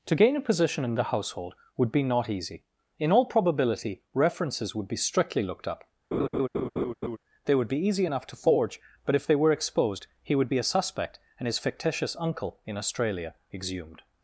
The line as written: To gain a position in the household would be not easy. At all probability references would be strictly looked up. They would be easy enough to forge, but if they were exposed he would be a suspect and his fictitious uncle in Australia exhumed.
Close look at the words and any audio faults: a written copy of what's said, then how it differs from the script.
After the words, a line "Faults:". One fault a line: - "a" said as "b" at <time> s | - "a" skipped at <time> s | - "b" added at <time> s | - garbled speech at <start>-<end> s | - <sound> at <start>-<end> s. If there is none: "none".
To gain a position in the household would be not easy. In all probability references would be strictly looked up. They would be easy enough to forge, but if they were exposed he would be a suspect and his fictitious uncle in Australia exhumed.
Faults:
- "At" said as "In" at 3.0 s
- laugh at 6.1-7.2 s